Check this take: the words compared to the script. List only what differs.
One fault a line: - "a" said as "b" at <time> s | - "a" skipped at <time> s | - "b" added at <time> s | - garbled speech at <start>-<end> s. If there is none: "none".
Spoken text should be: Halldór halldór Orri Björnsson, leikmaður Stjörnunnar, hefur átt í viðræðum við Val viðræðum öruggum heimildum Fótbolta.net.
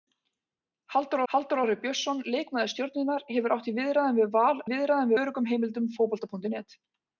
none